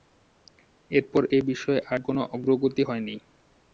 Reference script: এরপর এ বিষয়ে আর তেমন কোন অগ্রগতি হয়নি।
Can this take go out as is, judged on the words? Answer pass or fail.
fail